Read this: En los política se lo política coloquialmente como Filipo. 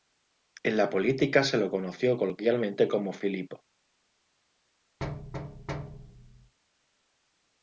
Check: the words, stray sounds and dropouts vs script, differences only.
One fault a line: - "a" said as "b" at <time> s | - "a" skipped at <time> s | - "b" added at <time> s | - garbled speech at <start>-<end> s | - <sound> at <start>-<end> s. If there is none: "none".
- "los" said as "la" at 0.8 s
- "política" said as "conoció" at 1.7 s
- thud at 5.0-6.5 s